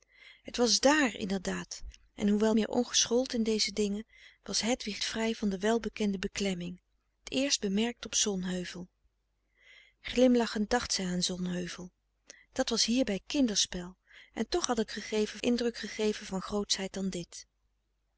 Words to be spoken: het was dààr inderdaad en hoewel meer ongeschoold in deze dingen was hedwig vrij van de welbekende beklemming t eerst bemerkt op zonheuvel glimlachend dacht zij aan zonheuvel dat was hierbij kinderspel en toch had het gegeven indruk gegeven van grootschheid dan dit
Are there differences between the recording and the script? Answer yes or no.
no